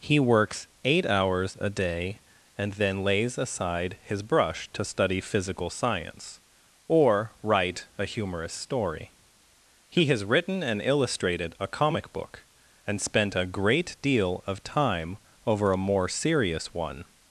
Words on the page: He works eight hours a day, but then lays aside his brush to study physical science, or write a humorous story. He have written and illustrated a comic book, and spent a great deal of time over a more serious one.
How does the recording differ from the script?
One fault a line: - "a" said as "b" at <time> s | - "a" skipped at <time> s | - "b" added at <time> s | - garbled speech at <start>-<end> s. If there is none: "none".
- "but" said as "and" at 2.6 s
- "have" said as "has" at 10.1 s